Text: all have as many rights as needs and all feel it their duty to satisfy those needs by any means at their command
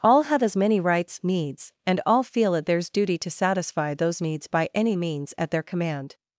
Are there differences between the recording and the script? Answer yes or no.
yes